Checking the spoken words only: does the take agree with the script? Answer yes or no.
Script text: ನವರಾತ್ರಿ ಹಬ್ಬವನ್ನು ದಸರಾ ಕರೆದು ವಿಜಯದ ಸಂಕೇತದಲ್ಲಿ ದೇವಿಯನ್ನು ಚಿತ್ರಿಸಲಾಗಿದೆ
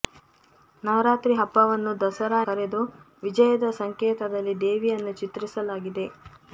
yes